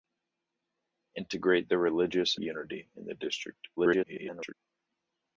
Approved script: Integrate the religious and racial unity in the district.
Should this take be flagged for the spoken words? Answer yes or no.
yes